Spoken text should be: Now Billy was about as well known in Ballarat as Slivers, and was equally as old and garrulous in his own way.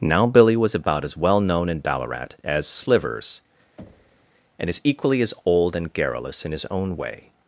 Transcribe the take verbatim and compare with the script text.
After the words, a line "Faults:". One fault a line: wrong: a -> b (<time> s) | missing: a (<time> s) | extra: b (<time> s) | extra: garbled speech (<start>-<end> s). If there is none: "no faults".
Now Billy was about as well known in Ballarat as Slivers, and is equally as old and garrulous in his own way.
Faults:
wrong: was -> is (4.7 s)